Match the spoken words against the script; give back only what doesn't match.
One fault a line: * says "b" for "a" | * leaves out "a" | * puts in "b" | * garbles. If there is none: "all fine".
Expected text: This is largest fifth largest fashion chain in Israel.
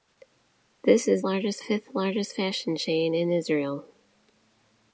all fine